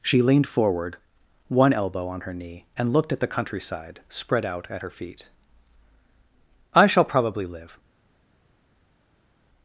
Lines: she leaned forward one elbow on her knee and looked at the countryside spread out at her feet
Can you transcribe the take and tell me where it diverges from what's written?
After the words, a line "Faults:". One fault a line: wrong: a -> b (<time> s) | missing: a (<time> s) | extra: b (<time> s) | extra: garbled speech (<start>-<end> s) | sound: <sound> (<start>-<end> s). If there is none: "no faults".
she leaned forward one elbow on her knee and looked at the countryside spread out at her feet i shall probably live
Faults:
extra: i shall probably live (6.7 s)